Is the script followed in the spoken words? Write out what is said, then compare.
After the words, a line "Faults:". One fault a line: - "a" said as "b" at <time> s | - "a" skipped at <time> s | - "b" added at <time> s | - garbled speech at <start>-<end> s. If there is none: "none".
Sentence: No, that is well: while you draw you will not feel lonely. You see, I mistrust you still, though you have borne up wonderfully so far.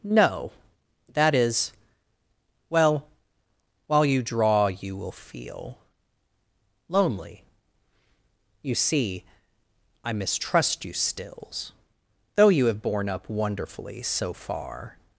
No, that is well: while you draw you will feel lonely. You see, I mistrust you stills, though you have borne up wonderfully so far.
Faults:
- "not" skipped at 5.1 s
- "still" said as "stills" at 10.9 s